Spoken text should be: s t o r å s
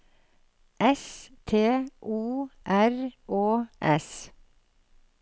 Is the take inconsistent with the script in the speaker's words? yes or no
no